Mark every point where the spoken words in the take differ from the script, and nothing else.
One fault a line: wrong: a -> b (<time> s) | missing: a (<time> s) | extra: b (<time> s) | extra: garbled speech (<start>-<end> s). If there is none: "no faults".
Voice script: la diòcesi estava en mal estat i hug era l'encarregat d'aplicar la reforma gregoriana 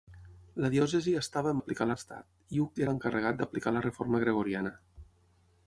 wrong: mal -> d'aplicar (1.6 s)
missing: era (2.8 s)